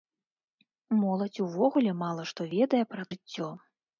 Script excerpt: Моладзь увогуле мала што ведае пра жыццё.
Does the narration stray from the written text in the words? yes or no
no